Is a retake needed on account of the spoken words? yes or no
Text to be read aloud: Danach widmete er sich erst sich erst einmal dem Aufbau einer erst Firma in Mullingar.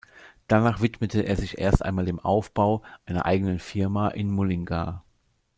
yes